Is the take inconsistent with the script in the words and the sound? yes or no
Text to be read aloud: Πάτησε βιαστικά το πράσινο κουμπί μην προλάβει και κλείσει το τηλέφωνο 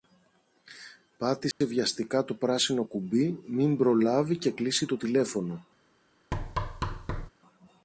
yes